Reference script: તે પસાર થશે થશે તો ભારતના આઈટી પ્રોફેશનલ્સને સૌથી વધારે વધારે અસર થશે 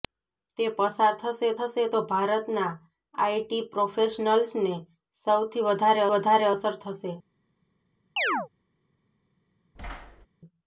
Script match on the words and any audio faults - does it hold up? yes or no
no